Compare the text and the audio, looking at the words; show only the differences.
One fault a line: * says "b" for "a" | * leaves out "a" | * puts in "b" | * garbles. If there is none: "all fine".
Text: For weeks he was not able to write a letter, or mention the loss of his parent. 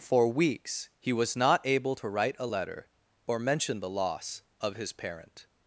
all fine